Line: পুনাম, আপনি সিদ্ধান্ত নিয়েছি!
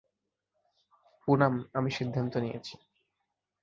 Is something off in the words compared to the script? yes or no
yes